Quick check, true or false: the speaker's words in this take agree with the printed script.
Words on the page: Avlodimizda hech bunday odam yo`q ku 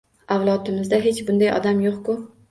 true